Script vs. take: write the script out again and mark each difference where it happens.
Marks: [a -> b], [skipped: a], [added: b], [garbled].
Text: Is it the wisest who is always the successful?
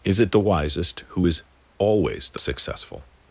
Is it the wisest who is always the successful?